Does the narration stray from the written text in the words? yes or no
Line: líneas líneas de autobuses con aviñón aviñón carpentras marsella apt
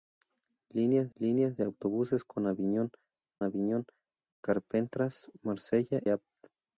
no